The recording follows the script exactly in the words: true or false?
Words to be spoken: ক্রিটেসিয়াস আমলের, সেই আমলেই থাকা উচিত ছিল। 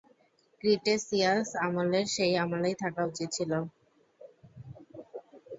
true